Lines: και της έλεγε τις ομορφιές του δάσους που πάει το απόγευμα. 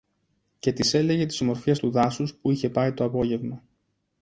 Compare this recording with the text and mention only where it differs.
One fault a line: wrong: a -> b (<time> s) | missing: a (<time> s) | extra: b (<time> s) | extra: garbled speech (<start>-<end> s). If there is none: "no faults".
extra: είχε (2.5 s)